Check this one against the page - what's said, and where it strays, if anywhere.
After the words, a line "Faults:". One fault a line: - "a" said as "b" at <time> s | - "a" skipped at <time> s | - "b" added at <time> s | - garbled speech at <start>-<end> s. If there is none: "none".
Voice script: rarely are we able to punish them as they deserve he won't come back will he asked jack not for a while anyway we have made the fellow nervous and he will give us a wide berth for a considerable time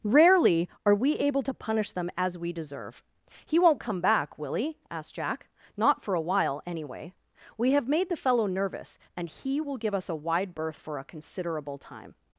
rarely are we able to punish them as we deserve he won't come back will he asked jack not for a while anyway we have made the fellow nervous and he will give us a wide berth for a considerable time
Faults:
- "they" said as "we" at 2.4 s